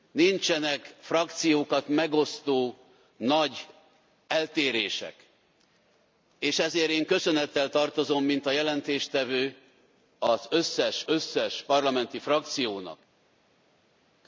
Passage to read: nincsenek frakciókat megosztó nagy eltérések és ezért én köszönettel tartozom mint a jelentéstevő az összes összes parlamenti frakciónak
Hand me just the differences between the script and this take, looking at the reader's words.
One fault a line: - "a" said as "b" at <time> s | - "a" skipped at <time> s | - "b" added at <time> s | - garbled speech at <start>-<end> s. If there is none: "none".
none